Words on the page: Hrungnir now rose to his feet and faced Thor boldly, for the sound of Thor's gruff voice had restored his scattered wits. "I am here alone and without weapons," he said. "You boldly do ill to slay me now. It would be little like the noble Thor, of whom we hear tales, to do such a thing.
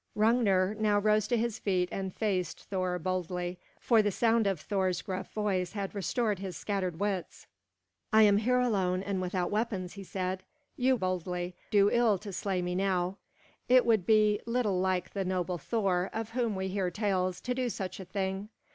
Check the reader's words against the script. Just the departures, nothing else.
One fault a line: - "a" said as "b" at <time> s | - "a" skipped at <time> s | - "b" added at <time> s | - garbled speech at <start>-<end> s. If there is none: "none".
none